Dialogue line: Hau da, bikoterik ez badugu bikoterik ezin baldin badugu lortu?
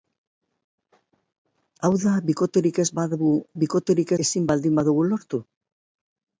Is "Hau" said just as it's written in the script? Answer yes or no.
yes